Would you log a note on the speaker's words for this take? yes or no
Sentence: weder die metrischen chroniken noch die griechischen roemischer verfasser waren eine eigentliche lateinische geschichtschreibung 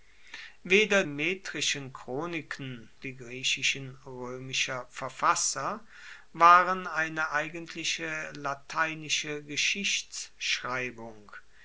yes